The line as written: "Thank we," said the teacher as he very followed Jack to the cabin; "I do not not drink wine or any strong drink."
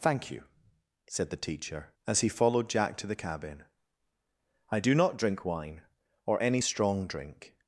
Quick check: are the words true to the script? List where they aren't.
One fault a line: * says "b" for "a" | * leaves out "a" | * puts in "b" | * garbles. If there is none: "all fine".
* says "you" for "we"
* leaves out "very"
* leaves out "not"